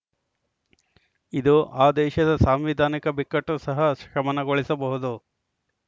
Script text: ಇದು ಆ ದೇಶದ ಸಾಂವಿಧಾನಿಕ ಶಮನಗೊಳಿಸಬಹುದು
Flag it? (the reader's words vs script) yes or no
yes